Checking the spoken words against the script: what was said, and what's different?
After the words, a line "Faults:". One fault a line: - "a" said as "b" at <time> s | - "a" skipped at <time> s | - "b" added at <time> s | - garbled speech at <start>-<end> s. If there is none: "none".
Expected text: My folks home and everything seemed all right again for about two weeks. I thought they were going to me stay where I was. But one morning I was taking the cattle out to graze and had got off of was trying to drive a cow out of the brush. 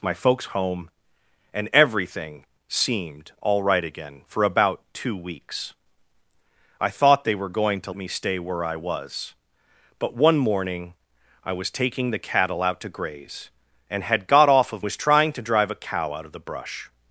My folks home and everything seemed all right again for about two weeks. I thought they were going to me stay where I was. But one morning I was taking the cattle out to graze and had got off of was trying to drive a cow out of the brush.
Faults:
none